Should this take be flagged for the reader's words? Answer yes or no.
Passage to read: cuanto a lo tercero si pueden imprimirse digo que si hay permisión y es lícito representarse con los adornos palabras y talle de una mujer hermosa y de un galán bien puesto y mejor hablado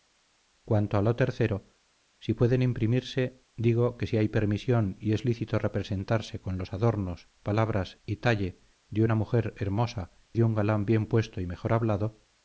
yes